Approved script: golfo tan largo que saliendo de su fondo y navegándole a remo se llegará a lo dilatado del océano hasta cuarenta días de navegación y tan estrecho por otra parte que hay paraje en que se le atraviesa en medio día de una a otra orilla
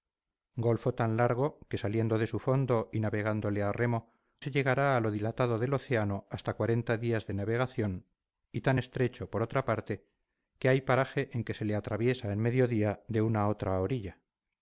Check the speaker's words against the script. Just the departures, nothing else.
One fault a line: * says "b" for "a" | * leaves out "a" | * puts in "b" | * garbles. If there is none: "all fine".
all fine